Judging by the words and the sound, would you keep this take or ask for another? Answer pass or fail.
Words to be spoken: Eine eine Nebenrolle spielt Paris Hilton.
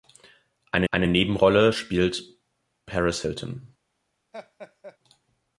fail